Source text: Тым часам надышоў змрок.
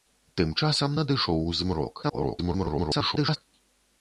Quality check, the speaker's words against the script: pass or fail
fail